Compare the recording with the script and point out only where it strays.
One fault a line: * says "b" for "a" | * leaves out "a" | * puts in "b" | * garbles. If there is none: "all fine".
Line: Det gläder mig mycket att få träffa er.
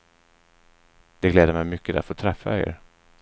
all fine